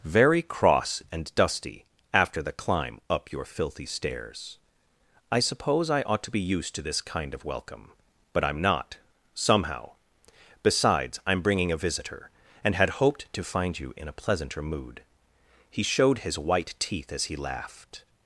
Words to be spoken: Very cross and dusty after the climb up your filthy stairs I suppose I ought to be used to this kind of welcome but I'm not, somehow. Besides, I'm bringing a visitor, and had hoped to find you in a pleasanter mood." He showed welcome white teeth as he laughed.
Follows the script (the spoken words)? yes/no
no